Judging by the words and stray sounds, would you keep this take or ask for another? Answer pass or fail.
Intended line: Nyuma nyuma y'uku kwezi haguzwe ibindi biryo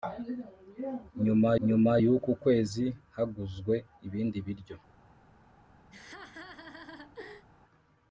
fail